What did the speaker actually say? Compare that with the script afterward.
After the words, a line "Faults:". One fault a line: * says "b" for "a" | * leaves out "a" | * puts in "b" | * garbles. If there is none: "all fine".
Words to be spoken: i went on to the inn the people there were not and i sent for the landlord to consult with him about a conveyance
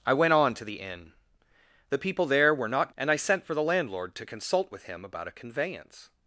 i went on to the inn the people there were not and i sent for the landlord to consult with him about a conveyance
Faults:
all fine